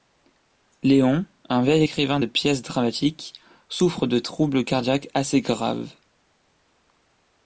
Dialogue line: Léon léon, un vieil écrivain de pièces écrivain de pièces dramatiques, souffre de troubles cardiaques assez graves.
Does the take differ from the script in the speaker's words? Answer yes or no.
yes